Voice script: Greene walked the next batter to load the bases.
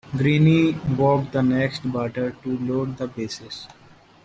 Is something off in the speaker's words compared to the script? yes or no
no